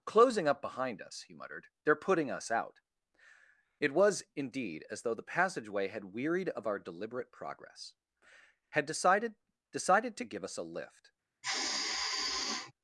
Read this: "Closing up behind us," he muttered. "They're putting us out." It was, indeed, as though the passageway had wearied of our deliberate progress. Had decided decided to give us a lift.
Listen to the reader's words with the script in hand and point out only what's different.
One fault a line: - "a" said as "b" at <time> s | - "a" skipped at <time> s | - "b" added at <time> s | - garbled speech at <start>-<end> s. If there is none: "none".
none